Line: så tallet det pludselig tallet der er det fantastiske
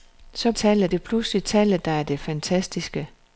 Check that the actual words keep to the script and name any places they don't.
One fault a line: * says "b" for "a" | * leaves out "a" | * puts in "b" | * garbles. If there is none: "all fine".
all fine